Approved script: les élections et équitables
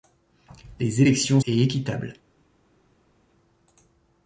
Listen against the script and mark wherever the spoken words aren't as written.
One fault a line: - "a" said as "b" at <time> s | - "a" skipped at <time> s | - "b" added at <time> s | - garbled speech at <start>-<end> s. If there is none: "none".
none